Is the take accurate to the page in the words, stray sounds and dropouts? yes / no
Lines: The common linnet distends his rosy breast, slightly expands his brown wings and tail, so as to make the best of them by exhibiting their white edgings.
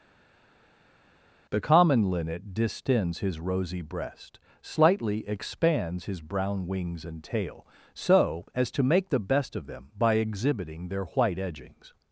yes